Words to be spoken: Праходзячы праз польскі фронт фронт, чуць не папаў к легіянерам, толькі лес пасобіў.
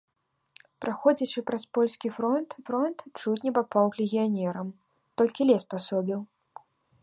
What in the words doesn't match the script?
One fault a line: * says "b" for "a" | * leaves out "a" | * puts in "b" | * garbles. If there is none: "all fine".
all fine